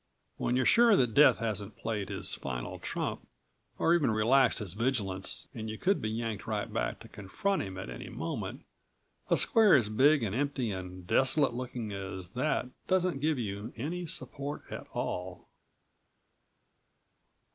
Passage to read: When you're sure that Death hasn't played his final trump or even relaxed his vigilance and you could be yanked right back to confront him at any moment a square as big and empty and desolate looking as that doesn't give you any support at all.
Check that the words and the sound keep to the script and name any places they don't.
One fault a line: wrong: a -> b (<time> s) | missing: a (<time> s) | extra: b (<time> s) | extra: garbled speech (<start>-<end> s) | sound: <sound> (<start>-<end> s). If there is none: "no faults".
no faults